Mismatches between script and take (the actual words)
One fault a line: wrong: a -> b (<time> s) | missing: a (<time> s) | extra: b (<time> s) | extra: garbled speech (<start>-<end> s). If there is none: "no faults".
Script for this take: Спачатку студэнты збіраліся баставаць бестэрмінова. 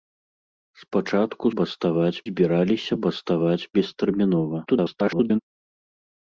wrong: студэнты -> баставаць (1.6 s)
extra: garbled speech (4.7-5.4 s)